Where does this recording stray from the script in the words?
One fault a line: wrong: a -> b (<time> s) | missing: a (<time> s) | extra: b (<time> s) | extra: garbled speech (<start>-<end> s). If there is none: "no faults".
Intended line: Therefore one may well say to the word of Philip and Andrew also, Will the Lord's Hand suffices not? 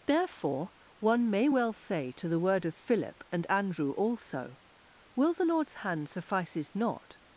no faults